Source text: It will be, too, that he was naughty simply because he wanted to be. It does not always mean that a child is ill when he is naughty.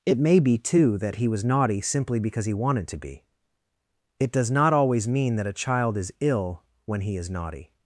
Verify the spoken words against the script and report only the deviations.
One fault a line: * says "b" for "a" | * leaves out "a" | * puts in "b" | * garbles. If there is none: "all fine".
* says "may" for "will"